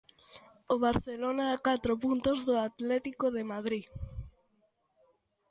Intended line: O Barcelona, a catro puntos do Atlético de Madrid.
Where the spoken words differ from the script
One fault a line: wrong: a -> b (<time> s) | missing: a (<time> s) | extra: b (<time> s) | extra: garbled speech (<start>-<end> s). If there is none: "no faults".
no faults